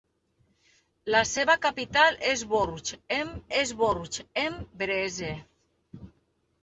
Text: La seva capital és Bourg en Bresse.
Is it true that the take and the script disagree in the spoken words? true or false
true